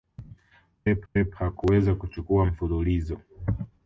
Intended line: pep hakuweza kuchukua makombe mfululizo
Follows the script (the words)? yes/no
no